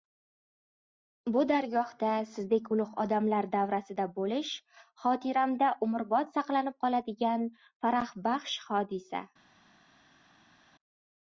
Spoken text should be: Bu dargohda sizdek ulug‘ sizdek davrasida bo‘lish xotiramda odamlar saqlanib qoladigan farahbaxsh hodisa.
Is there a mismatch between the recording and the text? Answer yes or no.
yes